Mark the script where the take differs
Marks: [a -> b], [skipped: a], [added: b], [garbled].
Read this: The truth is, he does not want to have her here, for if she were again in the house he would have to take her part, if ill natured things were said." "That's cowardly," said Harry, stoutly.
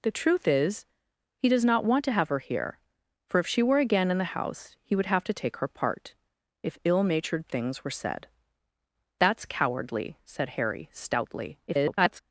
The truth is, he does not want to have her here, for if she were again in the house he would have to take her part, if ill natured things were said." "That's cowardly," said Harry, stoutly. [garbled]